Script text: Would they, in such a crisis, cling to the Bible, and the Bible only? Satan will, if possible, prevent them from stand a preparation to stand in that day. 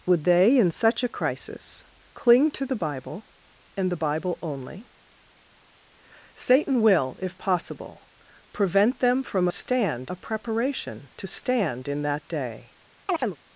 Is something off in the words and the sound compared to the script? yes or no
yes